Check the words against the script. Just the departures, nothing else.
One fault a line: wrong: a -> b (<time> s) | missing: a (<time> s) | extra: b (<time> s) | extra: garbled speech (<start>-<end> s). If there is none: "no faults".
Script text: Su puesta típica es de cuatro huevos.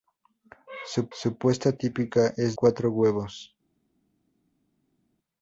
extra: su (1.1 s)
missing: de (2.6 s)